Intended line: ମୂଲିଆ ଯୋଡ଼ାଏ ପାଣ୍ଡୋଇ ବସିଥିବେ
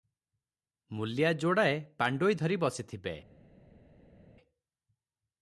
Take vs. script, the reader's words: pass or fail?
fail